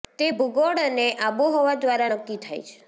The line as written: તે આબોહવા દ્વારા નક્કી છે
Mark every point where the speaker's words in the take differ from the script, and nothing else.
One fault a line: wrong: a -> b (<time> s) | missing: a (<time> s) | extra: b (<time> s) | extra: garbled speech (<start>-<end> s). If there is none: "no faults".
extra: ભૂગોળ અને (0.3 s)
extra: થાય (2.4 s)